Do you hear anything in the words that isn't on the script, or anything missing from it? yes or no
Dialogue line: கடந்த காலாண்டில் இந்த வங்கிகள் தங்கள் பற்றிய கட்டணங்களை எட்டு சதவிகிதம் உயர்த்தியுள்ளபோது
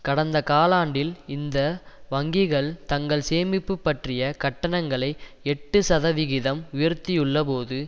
yes